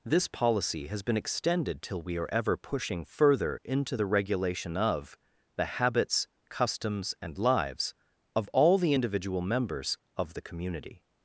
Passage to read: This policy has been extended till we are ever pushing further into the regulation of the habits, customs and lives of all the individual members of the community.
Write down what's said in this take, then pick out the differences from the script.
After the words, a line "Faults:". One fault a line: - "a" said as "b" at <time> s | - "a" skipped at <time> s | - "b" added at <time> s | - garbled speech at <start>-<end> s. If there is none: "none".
This policy has been extended till we are ever pushing further into the regulation of the habits, customs and lives of all the individual members of the community.
Faults:
none